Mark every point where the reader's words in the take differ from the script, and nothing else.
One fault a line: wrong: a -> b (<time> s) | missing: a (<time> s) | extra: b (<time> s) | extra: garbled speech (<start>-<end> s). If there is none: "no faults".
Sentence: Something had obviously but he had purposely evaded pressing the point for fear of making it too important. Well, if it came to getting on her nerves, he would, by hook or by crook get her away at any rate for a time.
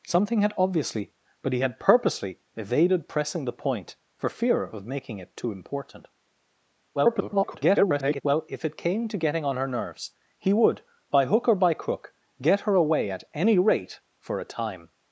extra: garbled speech (6.9-8.2 s)